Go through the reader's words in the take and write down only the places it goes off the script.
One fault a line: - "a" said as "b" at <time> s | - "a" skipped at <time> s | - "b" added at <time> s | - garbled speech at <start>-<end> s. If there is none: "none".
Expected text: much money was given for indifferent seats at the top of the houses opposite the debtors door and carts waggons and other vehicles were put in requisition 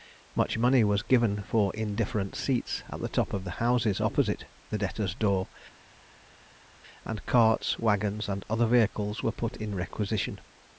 none